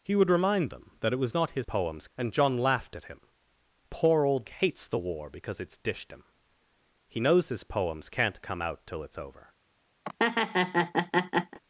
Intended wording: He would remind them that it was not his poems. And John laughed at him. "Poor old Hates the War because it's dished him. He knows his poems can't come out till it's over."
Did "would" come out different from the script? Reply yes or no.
no